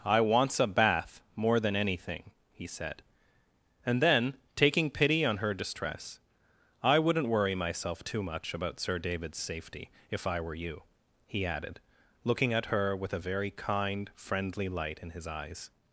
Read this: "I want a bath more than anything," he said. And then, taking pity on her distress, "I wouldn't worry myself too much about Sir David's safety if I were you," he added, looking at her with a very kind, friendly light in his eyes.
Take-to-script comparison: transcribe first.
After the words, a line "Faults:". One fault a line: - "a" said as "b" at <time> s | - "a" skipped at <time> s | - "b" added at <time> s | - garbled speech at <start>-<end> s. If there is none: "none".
"I wants a bath more than anything," he said. And then, taking pity on her distress, "I wouldn't worry myself too much about Sir David's safety if I were you," he added, looking at her with a very kind, friendly light in his eyes.
Faults:
- "want" said as "wants" at 0.2 s